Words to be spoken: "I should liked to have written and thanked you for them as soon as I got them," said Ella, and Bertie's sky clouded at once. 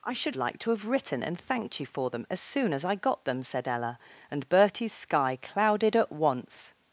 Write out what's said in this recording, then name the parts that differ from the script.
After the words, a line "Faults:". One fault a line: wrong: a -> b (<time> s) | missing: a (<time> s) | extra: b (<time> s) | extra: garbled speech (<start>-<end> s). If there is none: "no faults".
"I should liked to have written and thanked you for them as soon as I got them," said Ella, and Bertie's sky clouded at once.
Faults:
no faults